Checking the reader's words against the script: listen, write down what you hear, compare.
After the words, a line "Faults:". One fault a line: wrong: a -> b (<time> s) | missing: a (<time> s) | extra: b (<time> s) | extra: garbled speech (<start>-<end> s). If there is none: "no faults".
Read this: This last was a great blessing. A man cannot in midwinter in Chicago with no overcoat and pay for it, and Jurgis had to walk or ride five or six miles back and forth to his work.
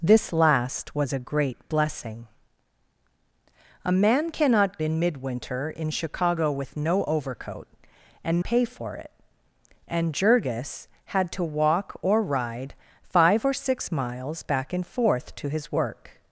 This last was a great blessing. A man cannot in midwinter in Chicago with no overcoat and pay for it, and Jurgis had to walk or ride five or six miles back and forth to his work.
Faults:
no faults